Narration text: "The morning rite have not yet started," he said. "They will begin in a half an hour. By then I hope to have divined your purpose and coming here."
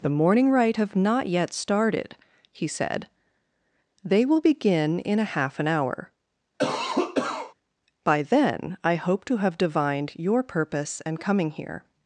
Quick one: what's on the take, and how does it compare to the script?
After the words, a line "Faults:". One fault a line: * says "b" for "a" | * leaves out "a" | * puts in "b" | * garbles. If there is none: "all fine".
"The morning rite have not yet started," he said. "They will begin in a half an hour. By then I hope to have divined your purpose and coming here."
Faults:
all fine